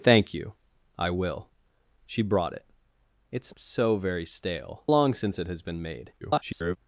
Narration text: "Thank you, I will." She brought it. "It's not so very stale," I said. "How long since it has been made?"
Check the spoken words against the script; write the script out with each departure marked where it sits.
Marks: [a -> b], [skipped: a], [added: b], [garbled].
"Thank you, I will." She brought it. "It's [skipped: not] so very stale," [skipped: I said. "How] long since it has been made?" [garbled]